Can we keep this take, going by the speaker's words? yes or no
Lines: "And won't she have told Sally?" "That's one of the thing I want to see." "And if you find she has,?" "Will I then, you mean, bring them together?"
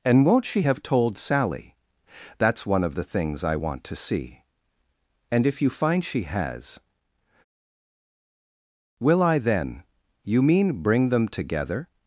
no